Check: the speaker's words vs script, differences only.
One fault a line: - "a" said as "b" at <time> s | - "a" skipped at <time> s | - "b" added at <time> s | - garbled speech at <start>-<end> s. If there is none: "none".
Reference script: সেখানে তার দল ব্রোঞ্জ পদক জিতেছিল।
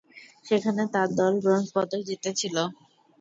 none